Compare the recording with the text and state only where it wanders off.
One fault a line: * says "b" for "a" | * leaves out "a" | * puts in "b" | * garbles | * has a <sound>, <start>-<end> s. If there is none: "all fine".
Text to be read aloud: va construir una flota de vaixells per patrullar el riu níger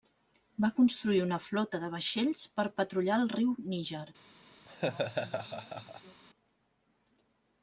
* has a laugh, 4.7-6.2 s